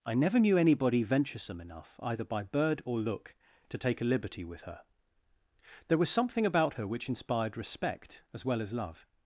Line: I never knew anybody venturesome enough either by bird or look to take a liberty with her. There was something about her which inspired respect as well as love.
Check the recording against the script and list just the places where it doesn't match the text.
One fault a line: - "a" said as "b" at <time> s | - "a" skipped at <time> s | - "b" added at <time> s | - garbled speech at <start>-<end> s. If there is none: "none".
none